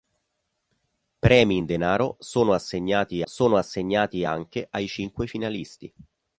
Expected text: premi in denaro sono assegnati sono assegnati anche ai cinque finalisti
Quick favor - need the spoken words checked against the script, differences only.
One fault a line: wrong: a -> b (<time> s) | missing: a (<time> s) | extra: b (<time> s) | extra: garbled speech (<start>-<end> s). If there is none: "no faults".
no faults